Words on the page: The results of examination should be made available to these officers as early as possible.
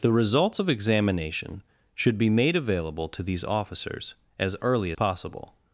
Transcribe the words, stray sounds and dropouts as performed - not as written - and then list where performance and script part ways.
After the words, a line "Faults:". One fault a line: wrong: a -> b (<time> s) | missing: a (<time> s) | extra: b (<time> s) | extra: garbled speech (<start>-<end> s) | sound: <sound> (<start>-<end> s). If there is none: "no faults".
The results of examination should be made available to these officers as early possible.
Faults:
missing: as (4.9 s)